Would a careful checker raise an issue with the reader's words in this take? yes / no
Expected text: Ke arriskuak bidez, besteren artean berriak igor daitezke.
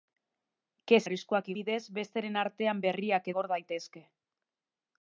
no